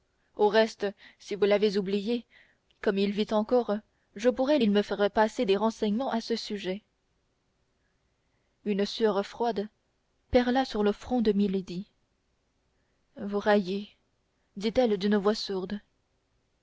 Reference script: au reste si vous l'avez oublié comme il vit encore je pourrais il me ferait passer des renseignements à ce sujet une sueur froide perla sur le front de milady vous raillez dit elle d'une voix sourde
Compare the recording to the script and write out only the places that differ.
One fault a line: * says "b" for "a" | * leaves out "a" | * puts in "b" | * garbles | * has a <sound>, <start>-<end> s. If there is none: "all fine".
all fine